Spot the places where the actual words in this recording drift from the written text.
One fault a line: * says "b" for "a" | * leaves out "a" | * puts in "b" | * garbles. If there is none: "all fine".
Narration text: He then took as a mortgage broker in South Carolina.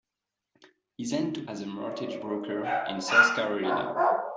all fine